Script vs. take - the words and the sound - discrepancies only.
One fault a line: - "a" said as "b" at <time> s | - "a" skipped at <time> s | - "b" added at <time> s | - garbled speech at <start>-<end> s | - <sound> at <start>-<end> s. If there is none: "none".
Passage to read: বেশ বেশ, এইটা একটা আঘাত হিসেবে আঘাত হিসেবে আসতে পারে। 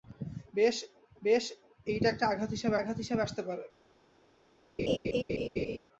- laugh at 4.8-5.8 s